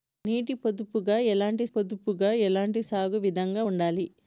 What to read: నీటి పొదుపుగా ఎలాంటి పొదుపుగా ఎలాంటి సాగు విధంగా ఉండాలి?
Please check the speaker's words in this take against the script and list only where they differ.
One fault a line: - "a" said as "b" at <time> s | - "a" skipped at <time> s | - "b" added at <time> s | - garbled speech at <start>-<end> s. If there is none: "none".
none